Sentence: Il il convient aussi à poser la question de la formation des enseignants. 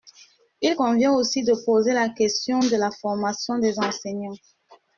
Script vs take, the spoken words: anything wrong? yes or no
yes